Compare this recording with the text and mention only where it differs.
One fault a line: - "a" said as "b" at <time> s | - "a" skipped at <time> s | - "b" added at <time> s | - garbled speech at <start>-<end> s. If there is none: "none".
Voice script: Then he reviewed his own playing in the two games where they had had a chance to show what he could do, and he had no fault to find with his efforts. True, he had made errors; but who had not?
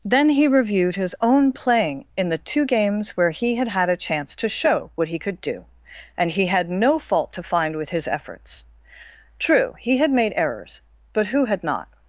- "they" said as "he" at 3.3 s